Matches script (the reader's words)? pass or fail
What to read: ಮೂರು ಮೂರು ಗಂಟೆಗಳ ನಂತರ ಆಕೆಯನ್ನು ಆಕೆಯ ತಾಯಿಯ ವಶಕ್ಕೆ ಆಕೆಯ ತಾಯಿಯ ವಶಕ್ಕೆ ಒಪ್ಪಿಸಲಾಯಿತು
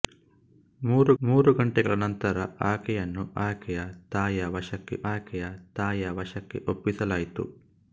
pass